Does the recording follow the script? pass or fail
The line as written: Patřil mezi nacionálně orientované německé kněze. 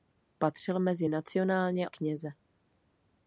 fail